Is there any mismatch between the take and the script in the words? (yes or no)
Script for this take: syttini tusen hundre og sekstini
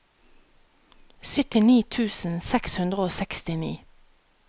yes